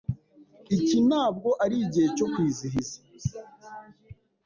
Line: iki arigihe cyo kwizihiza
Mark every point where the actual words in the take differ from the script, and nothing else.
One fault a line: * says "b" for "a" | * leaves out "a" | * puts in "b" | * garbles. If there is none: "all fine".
* puts in "ntabwo"